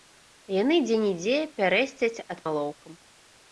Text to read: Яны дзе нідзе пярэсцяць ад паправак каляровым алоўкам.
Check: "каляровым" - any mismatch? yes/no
yes